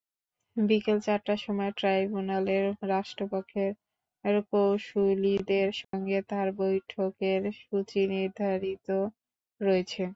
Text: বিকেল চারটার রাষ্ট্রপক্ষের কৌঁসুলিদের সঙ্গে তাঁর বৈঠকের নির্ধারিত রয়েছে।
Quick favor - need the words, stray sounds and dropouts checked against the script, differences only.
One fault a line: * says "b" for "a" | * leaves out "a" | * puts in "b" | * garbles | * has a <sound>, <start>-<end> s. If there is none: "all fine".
* puts in "সময় ট্রাইব্যুনালের"
* has a dropout, 5.8-5.9 s
* puts in "সূচি"